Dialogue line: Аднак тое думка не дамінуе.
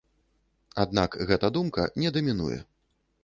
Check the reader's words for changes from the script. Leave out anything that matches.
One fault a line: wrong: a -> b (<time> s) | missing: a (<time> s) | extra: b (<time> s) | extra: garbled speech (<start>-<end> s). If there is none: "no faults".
wrong: тое -> гэта (1.3 s)